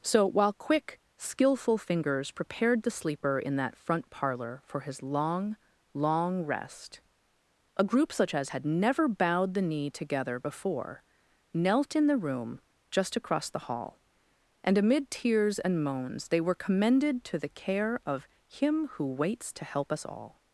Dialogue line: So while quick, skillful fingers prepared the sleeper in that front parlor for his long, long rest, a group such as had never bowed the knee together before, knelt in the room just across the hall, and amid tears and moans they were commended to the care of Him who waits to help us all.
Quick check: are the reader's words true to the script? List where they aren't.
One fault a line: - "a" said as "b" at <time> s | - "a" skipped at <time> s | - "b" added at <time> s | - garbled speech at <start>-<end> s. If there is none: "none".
none